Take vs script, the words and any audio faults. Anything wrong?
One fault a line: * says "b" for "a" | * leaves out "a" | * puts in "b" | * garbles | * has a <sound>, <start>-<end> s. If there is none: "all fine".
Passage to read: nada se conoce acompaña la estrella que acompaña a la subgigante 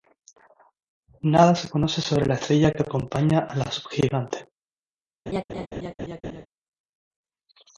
* says "sobre" for "acompaña"
* has a laugh, 5.3-6.5 s